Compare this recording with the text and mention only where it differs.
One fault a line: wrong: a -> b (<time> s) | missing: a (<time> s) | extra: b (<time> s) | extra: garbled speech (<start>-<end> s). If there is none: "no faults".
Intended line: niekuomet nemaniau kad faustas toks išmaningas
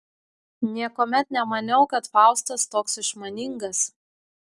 no faults